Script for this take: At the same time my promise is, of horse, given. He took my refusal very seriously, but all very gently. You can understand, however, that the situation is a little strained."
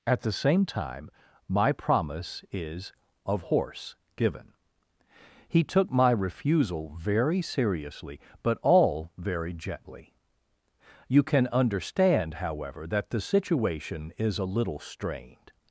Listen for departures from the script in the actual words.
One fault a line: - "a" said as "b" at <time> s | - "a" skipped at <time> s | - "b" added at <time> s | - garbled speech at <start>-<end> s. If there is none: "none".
none